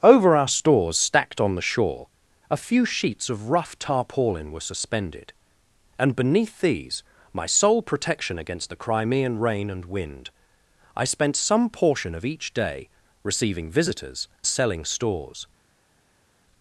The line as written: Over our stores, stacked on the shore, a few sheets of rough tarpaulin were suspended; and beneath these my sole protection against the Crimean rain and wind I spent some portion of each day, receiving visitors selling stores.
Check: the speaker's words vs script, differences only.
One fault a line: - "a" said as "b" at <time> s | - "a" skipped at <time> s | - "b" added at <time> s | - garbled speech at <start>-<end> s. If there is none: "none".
none